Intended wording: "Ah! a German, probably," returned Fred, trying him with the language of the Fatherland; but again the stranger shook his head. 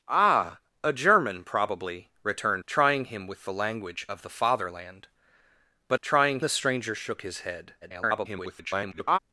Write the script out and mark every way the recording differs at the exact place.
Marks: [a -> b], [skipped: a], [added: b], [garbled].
"Ah! a German, probably," returned [skipped: Fred,] trying him with the language of the Fatherland; but [again -> trying] the stranger shook his head. [garbled]